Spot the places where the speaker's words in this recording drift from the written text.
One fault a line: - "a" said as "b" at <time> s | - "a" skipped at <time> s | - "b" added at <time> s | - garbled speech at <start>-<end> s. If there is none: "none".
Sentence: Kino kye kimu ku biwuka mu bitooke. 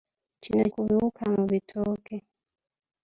- "kye kimu" skipped at 0.6 s